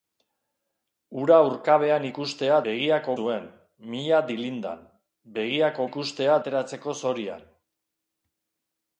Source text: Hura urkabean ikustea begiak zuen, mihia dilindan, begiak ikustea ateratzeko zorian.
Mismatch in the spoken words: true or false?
false